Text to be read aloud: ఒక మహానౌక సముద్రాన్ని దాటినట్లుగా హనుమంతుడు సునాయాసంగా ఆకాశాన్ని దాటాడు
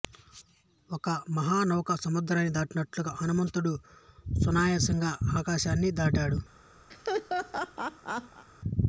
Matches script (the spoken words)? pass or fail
pass